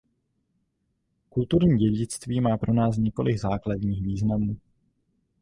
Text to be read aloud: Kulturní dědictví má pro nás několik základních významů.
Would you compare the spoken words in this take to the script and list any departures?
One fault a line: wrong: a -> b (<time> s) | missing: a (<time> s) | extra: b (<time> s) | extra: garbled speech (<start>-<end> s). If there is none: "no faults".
no faults